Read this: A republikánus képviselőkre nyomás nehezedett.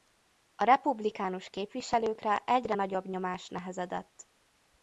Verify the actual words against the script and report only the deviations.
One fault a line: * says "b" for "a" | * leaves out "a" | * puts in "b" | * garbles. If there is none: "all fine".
* puts in "egyre nagyobb"